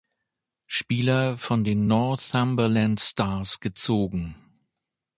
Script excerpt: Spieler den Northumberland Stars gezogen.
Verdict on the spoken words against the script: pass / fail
fail